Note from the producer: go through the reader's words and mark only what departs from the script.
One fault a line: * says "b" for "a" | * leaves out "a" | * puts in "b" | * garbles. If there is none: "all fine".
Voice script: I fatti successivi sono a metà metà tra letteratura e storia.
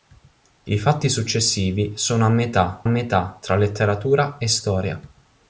all fine